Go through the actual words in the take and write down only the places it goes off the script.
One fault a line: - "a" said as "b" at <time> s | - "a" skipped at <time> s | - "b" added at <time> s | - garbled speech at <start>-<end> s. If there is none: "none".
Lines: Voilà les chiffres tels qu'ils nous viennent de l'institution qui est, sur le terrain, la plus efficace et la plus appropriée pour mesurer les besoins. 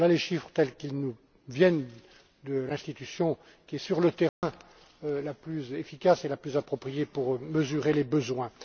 none